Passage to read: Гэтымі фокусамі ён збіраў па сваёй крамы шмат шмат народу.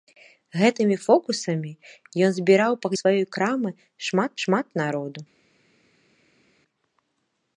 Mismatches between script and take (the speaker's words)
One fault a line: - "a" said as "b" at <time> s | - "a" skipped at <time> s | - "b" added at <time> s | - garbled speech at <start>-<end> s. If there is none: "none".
none